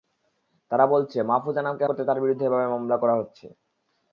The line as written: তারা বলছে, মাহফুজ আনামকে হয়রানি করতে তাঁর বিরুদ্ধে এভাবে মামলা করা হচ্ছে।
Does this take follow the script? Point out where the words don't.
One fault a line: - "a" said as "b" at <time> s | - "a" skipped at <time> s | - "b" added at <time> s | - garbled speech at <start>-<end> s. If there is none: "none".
- "হয়রানি" skipped at 1.9 s